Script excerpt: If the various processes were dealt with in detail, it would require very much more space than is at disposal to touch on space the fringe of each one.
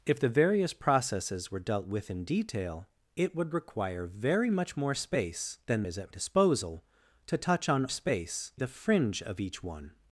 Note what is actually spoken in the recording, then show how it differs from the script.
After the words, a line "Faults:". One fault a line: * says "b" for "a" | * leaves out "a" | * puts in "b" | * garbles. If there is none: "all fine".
If the various processes were dealt with in detail, it would require very much more space than is at disposal to touch on space the fringe of each one.
Faults:
all fine